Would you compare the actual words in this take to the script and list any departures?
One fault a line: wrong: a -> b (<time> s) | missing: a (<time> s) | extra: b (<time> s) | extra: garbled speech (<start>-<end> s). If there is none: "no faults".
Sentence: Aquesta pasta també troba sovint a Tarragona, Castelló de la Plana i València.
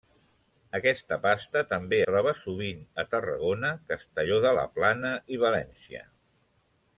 no faults